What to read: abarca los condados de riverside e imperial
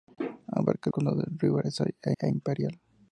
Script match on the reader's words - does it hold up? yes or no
no